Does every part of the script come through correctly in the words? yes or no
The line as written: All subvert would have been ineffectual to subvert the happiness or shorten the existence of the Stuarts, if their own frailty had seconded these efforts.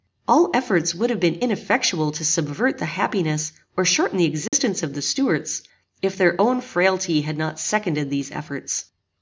no